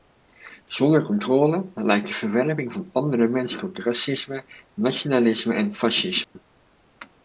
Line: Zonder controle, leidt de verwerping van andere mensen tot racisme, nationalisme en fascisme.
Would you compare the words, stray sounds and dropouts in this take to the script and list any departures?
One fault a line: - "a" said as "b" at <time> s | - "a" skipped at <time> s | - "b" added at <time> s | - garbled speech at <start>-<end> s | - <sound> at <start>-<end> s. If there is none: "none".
- dropout at 6.2-6.4 s